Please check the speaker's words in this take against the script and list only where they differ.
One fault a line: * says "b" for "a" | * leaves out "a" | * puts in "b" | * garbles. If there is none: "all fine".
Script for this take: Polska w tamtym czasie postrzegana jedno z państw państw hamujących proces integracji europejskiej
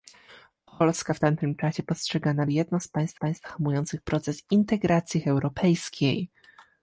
all fine